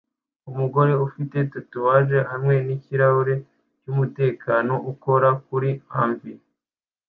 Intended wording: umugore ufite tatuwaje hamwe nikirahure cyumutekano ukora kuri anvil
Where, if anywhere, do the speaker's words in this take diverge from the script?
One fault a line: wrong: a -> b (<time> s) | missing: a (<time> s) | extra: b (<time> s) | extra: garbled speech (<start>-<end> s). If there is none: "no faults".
no faults